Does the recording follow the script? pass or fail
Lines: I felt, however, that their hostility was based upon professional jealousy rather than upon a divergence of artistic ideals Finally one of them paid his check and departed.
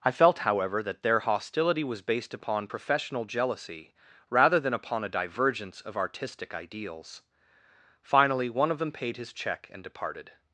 pass